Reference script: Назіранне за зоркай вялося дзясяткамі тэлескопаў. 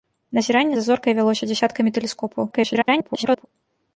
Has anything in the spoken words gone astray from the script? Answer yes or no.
yes